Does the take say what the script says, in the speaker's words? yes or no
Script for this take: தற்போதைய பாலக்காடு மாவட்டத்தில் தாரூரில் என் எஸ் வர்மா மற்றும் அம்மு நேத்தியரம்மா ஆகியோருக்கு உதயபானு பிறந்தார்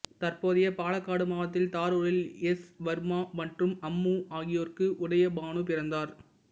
no